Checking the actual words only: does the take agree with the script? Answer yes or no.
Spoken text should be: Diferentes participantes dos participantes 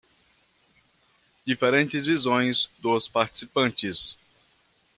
no